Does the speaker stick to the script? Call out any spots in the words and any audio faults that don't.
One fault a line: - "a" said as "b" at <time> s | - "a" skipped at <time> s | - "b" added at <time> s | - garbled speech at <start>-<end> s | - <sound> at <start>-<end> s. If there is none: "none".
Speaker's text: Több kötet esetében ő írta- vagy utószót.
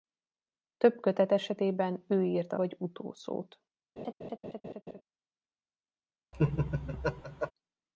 - laugh at 4.0-5.0 s
- laugh at 6.3-7.5 s